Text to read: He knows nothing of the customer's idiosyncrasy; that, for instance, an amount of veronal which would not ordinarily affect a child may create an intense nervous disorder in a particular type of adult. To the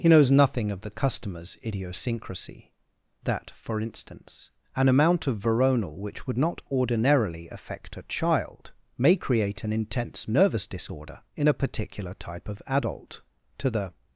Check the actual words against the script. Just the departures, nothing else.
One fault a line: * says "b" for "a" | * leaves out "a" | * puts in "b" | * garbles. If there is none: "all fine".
all fine